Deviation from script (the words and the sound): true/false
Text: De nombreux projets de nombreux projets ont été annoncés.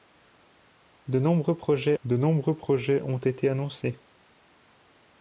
false